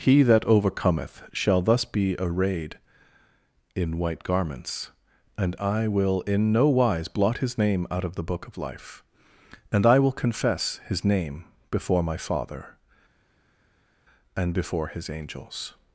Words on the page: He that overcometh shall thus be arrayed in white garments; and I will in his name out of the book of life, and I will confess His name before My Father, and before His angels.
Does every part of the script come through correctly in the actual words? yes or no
no